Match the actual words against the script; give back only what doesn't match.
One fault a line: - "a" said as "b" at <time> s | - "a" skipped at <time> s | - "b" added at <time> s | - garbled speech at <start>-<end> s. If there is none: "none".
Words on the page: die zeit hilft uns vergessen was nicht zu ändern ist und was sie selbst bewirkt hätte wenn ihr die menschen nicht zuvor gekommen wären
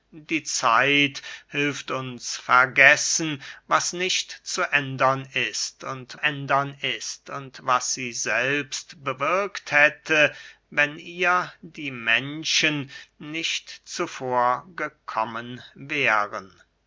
- "ändern ist und" added at 6.1 s